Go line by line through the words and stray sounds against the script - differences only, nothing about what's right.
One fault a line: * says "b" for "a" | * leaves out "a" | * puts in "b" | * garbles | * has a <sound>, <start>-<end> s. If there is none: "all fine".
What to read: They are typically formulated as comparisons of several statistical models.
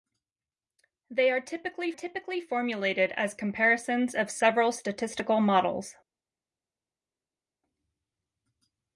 * puts in "typically"